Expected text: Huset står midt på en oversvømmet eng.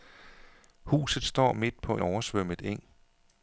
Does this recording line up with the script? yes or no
no